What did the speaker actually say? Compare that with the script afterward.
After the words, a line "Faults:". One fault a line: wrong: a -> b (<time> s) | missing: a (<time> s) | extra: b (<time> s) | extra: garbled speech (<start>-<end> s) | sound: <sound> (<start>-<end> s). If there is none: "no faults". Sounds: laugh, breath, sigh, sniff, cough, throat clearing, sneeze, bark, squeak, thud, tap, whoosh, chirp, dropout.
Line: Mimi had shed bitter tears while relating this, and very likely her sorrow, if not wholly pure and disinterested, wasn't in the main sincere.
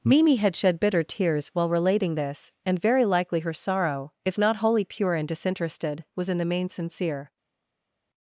Mimi had shed bitter tears while relating this, and very likely her sorrow, if not wholly pure and disinterested, was in the main sincere.
Faults:
wrong: wasn't -> was (6.1 s)